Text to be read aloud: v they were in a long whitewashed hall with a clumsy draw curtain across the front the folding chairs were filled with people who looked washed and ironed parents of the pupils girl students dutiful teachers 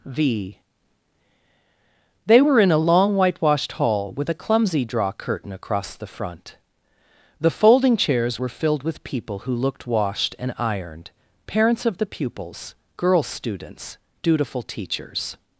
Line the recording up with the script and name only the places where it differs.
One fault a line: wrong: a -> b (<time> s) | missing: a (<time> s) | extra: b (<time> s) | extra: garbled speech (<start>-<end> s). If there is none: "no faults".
no faults